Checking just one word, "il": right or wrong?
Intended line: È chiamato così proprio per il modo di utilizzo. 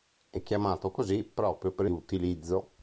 wrong